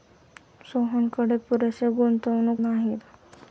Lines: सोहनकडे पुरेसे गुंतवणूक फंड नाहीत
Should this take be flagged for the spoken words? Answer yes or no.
yes